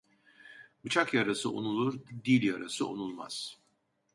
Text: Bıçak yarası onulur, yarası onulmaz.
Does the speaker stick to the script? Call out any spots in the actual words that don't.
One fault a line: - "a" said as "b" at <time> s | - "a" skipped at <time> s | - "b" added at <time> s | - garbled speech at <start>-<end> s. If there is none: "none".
- "dil" added at 2.3 s